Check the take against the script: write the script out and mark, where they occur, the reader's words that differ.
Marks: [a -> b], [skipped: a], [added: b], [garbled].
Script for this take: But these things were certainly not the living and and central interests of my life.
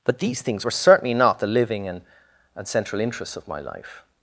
But these things were certainly not the living and and central interests of my life.